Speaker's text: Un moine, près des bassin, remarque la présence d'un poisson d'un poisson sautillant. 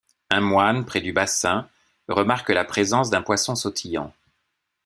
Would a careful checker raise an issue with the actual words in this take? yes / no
yes